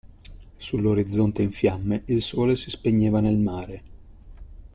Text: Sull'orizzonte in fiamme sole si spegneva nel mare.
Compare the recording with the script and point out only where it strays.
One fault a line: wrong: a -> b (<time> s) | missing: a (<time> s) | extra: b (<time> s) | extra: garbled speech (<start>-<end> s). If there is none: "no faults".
extra: il (2.1 s)